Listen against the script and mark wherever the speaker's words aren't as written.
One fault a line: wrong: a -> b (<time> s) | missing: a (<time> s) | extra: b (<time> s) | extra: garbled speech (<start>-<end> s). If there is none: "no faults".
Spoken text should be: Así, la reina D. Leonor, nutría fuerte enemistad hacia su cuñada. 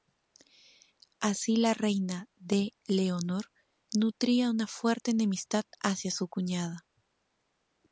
extra: una (4.5 s)